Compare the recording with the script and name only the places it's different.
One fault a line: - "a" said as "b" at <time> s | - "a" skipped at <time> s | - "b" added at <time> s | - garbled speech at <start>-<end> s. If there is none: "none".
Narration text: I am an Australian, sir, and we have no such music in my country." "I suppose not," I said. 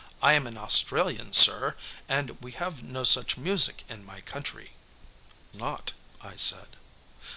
- "I suppose" skipped at 4.7 s